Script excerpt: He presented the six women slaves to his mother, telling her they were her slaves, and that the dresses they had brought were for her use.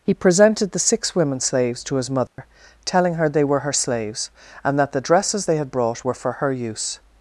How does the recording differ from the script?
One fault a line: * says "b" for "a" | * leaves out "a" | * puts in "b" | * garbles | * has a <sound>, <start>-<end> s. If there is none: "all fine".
* has a dropout, 2.3-2.4 s